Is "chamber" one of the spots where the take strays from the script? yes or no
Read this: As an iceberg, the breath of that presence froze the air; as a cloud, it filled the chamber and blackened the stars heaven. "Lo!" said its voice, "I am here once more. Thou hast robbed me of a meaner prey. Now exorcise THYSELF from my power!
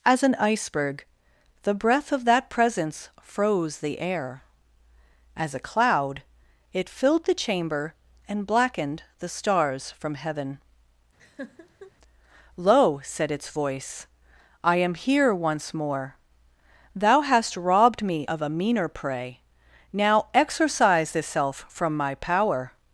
no